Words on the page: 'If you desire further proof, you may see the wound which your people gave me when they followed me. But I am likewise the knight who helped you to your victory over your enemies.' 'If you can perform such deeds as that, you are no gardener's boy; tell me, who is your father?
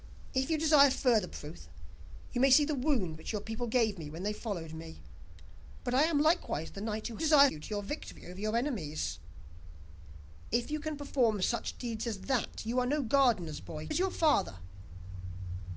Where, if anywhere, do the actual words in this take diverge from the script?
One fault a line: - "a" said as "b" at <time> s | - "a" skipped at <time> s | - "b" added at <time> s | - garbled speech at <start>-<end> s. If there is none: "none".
- "helped" said as "desire" at 7.2 s
- "tell me who" skipped at 13.9 s